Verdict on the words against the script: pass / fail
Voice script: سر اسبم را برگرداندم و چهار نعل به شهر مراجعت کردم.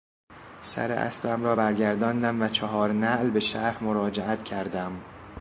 pass